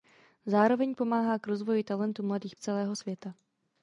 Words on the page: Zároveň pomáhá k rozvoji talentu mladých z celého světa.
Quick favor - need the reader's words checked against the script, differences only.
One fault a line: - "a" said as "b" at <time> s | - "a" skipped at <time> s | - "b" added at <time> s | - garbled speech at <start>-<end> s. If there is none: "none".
none